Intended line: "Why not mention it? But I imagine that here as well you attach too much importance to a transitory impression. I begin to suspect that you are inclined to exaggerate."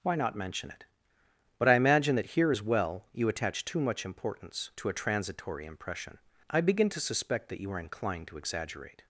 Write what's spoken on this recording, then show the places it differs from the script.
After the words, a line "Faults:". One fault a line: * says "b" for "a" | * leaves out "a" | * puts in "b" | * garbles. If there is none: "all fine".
"Why not mention it? But I imagine that here as well you attach too much importance to a transitory impression. I begin to suspect that you are inclined to exaggerate."
Faults:
all fine